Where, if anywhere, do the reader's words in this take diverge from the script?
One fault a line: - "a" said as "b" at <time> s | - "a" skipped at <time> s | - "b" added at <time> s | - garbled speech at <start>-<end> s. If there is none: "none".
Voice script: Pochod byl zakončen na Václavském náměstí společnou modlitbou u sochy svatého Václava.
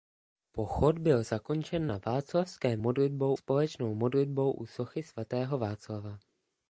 - "náměstí" said as "modlitbou" at 2.8 s